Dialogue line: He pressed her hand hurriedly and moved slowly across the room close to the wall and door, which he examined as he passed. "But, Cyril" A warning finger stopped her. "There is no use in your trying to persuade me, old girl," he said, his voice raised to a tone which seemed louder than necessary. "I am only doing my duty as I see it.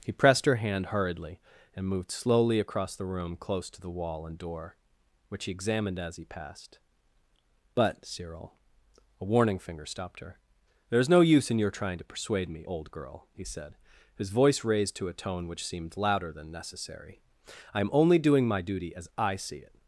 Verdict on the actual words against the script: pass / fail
pass